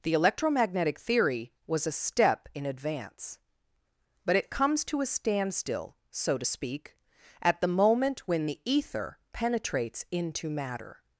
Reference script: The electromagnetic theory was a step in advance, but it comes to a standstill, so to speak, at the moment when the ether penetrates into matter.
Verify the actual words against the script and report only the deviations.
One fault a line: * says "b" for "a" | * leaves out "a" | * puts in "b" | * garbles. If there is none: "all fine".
all fine